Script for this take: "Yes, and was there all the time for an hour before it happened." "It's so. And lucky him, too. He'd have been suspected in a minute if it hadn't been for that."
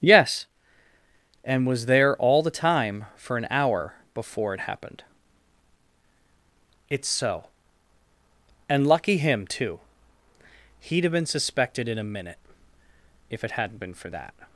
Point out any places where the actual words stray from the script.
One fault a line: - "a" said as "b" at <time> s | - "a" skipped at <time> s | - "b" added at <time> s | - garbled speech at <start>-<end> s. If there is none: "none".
none